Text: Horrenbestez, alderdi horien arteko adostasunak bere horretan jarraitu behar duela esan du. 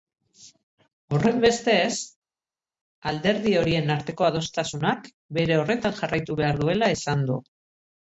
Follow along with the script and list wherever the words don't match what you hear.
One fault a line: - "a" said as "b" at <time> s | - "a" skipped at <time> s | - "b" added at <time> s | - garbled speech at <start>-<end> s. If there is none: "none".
none